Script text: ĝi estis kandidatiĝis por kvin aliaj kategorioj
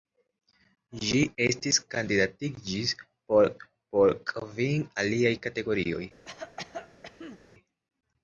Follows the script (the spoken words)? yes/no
no